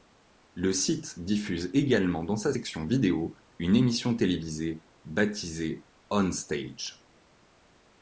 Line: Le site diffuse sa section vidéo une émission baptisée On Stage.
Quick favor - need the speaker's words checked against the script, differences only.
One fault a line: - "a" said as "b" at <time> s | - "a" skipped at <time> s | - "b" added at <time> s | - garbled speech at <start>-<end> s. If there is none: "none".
- "également dans" added at 1.8 s
- "télévisée" added at 4.1 s